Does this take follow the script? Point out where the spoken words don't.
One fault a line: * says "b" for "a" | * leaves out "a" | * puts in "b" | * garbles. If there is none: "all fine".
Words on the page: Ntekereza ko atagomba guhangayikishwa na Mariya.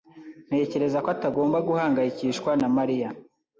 all fine